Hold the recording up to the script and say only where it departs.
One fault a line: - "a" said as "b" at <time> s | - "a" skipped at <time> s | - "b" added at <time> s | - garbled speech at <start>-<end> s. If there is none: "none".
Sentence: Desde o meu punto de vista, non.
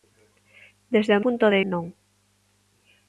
- "meu" skipped at 1.2 s
- "vista" skipped at 1.6 s